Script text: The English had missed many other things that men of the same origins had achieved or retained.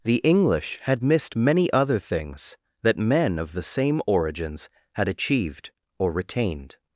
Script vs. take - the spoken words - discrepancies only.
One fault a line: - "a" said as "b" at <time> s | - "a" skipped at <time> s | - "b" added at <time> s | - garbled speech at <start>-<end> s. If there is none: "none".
none